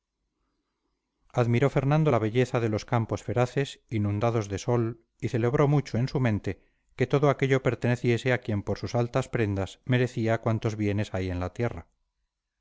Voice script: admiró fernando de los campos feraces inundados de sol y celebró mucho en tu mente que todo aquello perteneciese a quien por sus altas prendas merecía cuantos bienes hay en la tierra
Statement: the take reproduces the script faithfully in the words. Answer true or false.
false